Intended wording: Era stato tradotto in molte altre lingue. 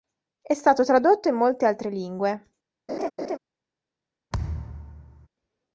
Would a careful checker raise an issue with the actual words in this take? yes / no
yes